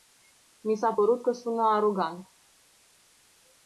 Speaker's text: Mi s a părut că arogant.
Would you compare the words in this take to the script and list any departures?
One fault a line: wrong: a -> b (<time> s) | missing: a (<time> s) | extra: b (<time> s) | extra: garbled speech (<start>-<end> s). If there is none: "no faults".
extra: sună (1.3 s)